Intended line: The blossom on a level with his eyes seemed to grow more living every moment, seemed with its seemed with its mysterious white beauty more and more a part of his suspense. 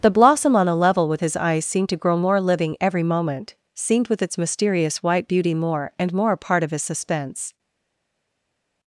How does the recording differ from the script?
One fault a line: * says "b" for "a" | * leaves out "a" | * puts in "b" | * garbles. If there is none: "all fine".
* leaves out "seemed with its"